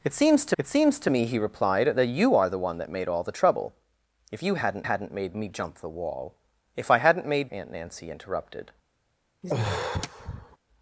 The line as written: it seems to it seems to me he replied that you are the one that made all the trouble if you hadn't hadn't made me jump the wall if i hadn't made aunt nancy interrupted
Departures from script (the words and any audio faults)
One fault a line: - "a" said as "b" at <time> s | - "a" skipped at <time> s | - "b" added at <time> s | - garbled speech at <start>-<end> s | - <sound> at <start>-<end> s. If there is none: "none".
- sigh at 9.4-10.6 s